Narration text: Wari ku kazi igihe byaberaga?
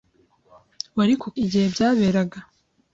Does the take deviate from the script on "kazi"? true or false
true